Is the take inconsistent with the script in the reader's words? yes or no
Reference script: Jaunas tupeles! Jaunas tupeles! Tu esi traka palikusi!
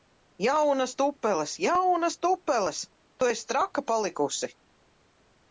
no